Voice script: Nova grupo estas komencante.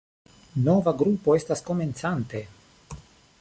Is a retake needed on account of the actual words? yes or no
no